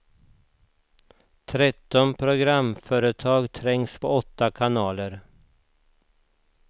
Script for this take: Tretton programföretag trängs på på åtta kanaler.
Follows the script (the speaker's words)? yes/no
no